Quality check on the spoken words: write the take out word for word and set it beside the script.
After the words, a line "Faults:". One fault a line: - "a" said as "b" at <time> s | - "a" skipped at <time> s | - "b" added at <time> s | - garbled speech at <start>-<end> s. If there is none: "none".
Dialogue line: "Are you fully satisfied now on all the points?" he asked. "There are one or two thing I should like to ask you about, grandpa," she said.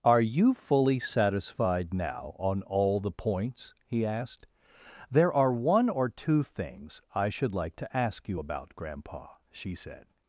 "Are you fully satisfied now on all the points?" he asked. "There are one or two things I should like to ask you about, grandpa," she said.
Faults:
- "thing" said as "things" at 6.4 s